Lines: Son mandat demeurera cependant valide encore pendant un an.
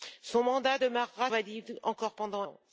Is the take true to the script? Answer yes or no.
no